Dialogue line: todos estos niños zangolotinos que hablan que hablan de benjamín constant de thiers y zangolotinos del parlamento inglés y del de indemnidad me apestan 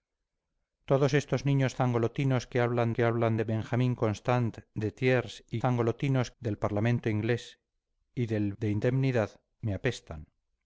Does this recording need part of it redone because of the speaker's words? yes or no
no